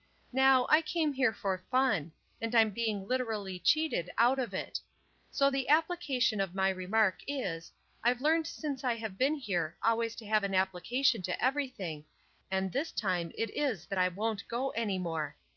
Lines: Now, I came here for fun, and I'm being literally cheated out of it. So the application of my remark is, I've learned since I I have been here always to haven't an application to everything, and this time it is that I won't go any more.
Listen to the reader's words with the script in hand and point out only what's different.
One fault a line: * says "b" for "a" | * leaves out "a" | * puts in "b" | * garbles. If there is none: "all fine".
* leaves out "I"
* says "have" for "haven't"